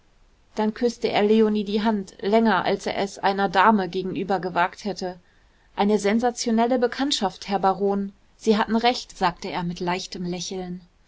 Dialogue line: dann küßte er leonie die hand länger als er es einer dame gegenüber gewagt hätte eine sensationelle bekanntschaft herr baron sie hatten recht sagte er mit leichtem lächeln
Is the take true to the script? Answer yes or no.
yes